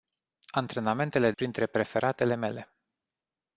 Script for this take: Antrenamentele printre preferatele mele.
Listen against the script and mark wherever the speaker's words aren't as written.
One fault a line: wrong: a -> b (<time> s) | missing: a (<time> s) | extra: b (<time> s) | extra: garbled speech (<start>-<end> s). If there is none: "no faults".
no faults